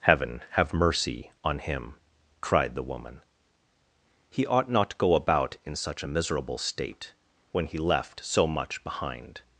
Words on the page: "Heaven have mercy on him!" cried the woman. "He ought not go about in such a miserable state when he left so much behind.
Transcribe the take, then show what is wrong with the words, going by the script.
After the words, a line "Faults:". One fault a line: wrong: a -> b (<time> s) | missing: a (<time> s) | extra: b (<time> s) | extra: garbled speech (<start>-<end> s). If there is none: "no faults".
"Heaven have mercy on him!" cried the woman. "He ought not go about in such a miserable state when he left so much behind.
Faults:
no faults